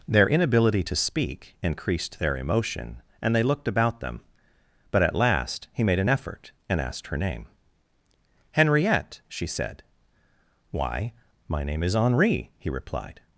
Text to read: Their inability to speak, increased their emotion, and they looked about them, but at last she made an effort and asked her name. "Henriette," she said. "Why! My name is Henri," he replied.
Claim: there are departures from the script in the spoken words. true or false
true